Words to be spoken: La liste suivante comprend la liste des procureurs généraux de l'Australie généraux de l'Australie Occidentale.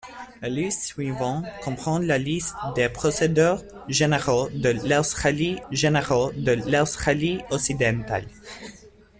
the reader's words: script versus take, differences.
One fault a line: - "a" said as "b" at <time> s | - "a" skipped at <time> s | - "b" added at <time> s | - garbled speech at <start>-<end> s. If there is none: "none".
none